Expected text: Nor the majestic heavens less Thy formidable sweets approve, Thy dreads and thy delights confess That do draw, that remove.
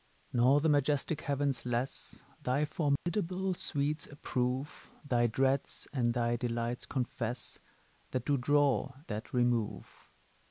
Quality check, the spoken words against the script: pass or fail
pass